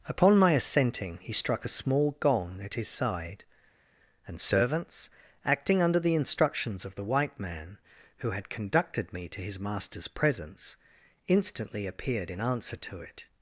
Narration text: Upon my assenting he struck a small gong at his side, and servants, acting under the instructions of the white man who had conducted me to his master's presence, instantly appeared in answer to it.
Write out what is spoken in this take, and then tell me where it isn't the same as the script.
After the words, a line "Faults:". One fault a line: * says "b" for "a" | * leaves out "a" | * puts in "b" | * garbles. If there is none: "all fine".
Upon my assenting he struck a small gong at his side, and servants, acting under the instructions of the white man who had conducted me to his master's presence, instantly appeared in answer to it.
Faults:
all fine